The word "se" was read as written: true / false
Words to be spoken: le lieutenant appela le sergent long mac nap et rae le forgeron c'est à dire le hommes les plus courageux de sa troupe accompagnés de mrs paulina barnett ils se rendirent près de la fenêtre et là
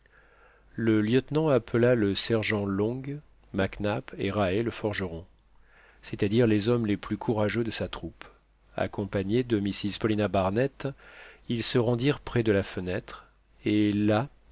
true